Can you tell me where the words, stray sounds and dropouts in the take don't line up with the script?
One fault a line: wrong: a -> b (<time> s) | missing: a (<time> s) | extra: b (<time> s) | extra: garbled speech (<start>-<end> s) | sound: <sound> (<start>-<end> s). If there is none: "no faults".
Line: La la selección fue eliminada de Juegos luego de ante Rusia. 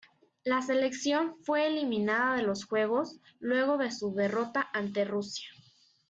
missing: la (0.6 s)
extra: los (2.4 s)
extra: su derrota (3.9 s)